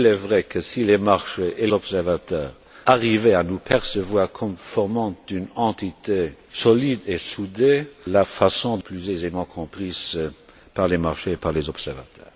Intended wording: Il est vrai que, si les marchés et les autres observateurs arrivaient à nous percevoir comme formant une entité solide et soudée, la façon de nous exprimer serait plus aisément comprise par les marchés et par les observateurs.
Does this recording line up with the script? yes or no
no